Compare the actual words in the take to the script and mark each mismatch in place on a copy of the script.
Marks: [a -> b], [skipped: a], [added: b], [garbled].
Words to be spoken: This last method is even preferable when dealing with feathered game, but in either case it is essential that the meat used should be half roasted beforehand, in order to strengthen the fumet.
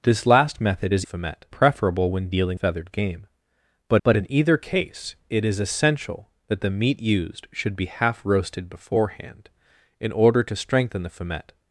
This last method is [even -> fumet] preferable when dealing [skipped: with] feathered game, but [added: but] in either case it is essential that the meat used should be half roasted beforehand, in order to strengthen the fumet.